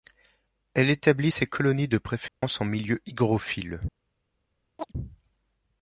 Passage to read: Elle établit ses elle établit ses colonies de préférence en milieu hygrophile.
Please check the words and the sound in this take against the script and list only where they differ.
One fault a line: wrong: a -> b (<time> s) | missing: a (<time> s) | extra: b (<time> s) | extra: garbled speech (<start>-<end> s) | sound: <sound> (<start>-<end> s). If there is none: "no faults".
missing: elle établit ses (1.4 s)
sound: dropout (2.3-2.4 s)
sound: chirp (4.8-4.9 s)